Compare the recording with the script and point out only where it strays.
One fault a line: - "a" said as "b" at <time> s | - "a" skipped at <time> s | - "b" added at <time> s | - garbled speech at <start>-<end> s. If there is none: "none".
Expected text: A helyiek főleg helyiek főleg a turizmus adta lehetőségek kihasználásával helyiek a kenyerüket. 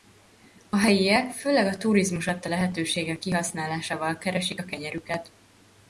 - "helyiek főleg" skipped at 1.6 s
- "helyiek" said as "keresik" at 4.2 s